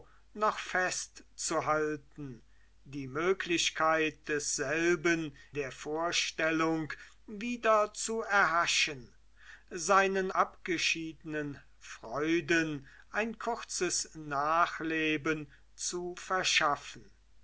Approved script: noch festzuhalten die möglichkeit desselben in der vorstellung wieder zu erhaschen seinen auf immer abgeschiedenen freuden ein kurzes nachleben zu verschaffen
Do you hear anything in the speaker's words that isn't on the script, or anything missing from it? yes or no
yes